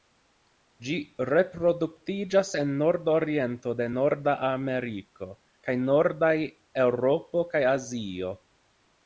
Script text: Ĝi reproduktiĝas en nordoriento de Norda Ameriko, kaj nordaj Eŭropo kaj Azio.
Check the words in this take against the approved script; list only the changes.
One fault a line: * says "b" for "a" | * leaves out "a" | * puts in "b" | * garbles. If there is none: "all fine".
all fine